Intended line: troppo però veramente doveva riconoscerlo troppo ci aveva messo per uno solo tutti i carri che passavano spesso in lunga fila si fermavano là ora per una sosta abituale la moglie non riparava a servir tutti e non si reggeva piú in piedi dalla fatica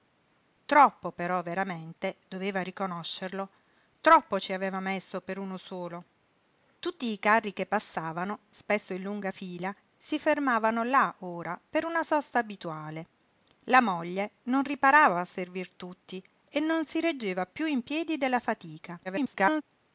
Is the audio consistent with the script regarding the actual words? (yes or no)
no